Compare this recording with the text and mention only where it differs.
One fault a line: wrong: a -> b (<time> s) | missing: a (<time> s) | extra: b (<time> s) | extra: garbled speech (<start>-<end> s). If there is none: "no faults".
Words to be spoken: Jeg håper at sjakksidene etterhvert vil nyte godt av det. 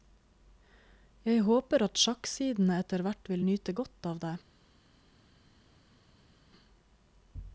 no faults